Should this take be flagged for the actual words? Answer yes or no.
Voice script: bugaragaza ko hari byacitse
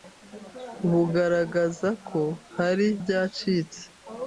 no